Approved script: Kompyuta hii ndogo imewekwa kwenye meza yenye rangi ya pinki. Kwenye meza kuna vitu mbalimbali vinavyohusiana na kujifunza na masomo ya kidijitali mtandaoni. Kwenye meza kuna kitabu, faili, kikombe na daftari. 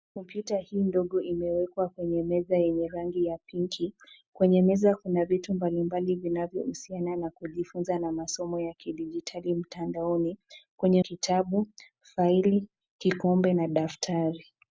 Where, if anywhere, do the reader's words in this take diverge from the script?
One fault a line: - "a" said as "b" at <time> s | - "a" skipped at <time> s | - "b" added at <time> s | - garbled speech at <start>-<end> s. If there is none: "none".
- "meza kuna" skipped at 11.0 s